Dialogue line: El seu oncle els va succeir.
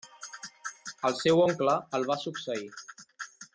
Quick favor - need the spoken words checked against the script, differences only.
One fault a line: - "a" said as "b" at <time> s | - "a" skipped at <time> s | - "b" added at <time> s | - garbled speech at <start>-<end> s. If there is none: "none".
- "els" said as "el" at 2.0 s